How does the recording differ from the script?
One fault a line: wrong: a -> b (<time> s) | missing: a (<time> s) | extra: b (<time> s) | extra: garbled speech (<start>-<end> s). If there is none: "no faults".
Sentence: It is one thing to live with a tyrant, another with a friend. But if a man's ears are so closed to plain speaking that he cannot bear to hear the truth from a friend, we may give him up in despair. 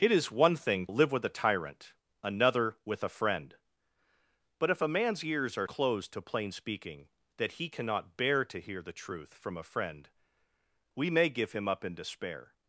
missing: to (0.9 s)
missing: so (5.7 s)